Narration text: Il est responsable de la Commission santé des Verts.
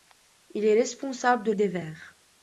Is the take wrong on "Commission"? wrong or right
wrong